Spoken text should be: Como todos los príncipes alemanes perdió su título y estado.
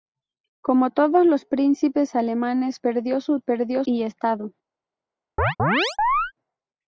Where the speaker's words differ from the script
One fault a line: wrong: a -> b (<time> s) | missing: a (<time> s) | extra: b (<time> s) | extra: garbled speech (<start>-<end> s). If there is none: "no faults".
wrong: título -> perdió (3.4 s)